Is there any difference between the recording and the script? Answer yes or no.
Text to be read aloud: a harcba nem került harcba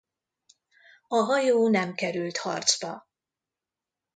yes